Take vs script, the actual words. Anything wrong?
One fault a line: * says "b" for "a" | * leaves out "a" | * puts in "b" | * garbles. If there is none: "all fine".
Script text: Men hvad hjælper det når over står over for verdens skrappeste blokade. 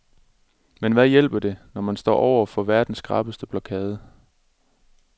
* says "man" for "over"